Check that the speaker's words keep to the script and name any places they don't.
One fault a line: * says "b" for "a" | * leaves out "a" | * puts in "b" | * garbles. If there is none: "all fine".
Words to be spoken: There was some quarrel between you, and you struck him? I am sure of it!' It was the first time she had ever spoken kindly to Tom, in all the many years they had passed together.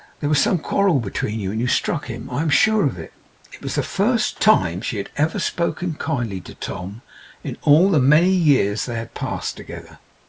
all fine